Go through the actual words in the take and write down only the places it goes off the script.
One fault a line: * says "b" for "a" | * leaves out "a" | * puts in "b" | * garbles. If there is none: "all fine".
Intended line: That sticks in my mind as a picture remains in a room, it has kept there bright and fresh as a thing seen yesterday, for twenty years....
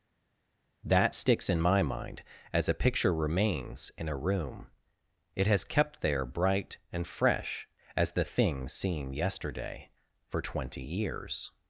* says "the" for "a"